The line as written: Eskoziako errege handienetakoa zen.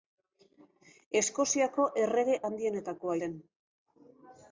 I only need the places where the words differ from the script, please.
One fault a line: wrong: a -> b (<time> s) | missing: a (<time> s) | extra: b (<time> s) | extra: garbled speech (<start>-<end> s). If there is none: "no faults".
no faults